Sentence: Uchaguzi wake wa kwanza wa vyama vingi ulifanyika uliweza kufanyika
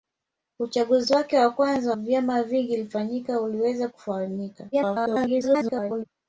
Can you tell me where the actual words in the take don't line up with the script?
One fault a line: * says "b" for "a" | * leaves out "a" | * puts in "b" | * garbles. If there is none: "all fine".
* leaves out "wa"
* garbles